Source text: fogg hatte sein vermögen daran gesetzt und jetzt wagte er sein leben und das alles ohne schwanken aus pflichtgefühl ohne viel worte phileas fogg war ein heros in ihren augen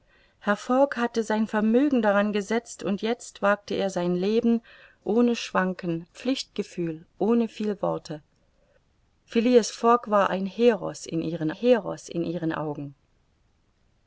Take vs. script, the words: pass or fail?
fail